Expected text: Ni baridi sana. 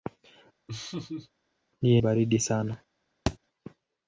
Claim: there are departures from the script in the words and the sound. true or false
true